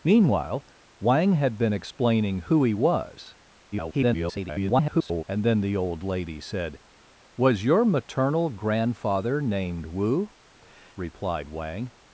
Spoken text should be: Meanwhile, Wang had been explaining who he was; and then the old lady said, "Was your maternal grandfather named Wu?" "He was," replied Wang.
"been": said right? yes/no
yes